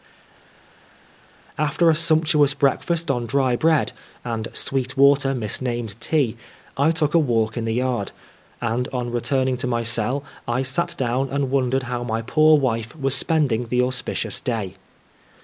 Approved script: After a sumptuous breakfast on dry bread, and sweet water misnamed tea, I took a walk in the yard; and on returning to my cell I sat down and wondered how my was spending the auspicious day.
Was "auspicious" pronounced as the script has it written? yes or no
yes